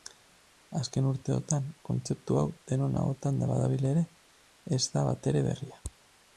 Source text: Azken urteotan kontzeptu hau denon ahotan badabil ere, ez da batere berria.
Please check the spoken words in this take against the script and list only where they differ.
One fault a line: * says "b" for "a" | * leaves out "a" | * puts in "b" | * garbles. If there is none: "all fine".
all fine